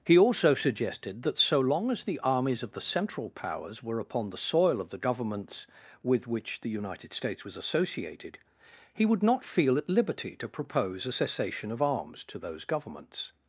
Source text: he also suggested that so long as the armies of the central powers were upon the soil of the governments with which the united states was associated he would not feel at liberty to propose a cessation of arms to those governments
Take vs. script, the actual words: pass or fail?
pass